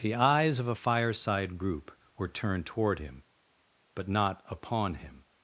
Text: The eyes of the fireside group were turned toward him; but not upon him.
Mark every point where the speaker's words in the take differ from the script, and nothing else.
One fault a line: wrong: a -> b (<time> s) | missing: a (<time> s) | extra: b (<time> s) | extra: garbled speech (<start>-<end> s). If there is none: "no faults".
wrong: the -> a (0.7 s)